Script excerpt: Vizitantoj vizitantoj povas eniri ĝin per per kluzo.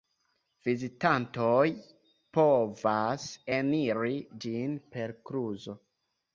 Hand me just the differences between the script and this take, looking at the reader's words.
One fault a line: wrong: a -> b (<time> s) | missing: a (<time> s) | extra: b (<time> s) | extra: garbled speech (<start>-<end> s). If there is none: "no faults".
missing: vizitantoj (1.7 s)
missing: per (5.2 s)